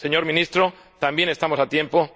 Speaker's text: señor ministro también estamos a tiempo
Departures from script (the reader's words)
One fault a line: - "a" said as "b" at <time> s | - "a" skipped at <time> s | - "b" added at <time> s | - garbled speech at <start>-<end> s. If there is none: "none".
none